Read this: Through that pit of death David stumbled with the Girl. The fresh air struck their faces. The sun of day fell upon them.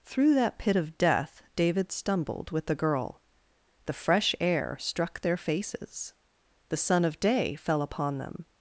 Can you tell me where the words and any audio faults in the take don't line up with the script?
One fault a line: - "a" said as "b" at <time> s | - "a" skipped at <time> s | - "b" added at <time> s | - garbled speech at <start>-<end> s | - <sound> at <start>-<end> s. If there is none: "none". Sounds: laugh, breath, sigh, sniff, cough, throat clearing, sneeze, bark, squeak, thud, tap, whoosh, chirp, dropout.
none